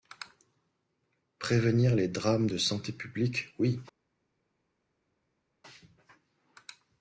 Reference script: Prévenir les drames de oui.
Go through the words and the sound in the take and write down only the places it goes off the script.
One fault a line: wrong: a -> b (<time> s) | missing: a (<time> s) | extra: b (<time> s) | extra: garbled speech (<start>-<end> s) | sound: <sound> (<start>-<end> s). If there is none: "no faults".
extra: santé publique (2.6 s)